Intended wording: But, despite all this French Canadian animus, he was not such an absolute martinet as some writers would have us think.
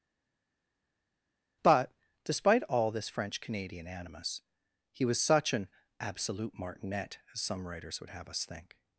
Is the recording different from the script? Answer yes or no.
yes